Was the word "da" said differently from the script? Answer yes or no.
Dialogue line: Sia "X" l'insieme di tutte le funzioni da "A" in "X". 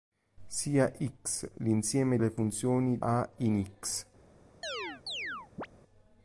yes